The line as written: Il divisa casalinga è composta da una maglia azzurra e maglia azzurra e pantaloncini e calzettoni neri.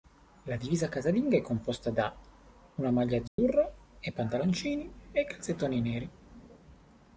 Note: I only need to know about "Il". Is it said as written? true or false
false